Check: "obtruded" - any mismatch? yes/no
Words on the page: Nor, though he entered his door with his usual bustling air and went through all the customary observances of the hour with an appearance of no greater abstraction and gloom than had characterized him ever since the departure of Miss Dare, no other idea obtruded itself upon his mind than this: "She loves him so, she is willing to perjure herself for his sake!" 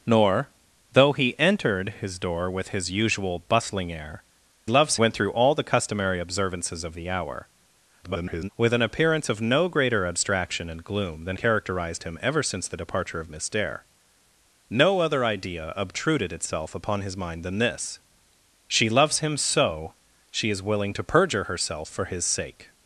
no